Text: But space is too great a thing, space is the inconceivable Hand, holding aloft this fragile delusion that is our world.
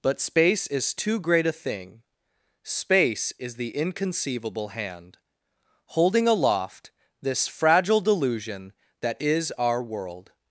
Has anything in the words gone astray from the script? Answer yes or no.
no